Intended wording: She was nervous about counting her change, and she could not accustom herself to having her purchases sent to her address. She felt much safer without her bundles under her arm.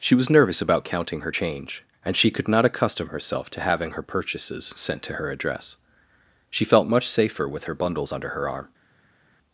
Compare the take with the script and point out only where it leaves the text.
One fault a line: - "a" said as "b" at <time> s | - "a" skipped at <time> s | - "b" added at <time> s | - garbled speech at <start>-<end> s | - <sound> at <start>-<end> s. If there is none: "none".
- "without" said as "with" at 7.5 s